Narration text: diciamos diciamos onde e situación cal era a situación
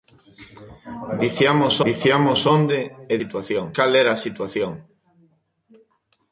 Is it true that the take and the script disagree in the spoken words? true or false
false